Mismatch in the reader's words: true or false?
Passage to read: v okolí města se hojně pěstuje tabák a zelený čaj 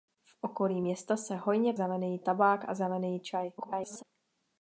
true